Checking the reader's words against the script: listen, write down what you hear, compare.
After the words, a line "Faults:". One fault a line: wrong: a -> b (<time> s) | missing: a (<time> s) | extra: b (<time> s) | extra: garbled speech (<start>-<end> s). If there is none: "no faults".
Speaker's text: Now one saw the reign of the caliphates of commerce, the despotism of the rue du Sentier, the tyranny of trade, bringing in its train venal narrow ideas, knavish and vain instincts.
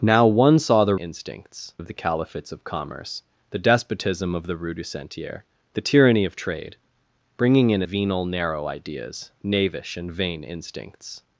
Now one saw the instincts of the caliphates of commerce, the despotism of the rue du Sentier, the tyranny of trade, bringing in venal narrow ideas, knavish and vain instincts.
Faults:
wrong: reign -> instincts (0.9 s)
missing: its train (7.8 s)